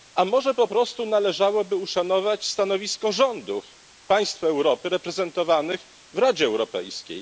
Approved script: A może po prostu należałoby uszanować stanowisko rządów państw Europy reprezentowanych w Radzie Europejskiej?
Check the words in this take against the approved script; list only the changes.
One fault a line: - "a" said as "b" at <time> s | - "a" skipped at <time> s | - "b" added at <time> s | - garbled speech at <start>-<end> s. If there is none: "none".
none